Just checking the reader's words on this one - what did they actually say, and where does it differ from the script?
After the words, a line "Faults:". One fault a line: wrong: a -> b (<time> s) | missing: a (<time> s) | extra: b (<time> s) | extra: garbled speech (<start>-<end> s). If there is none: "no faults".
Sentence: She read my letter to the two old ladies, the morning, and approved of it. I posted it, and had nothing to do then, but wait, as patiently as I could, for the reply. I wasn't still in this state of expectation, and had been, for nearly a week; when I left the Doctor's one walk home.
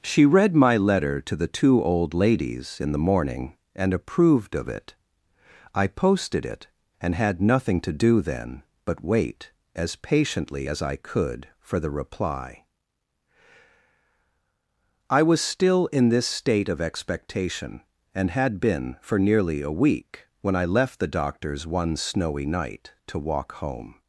She read my letter to the two old ladies, in the morning, and approved of it. I posted it, and had nothing to do then, but wait, as patiently as I could, for the reply. I was still in this state of expectation, and had been, for nearly a week; when I left the Doctor's one snowy night, to walk home.
Faults:
extra: in (2.8 s)
wrong: wasn't -> was (15.2 s)
extra: snowy night to (22.0 s)